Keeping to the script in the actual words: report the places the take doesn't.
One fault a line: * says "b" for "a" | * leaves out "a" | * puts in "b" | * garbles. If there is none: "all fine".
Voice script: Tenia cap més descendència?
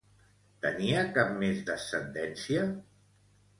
all fine